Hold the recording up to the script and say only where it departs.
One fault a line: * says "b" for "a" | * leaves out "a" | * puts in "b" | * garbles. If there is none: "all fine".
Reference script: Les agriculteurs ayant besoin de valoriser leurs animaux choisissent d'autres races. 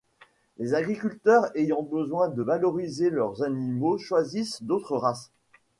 all fine